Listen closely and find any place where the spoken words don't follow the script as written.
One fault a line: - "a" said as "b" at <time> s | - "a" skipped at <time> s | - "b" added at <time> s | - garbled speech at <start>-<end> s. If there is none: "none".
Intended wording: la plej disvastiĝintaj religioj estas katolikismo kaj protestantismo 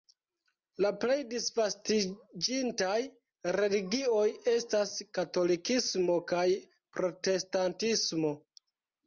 none